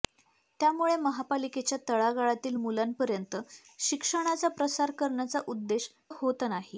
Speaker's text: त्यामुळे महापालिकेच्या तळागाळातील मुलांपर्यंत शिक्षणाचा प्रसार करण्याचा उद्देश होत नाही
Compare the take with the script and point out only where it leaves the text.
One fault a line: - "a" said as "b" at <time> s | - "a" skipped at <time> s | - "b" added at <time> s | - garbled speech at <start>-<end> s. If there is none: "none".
none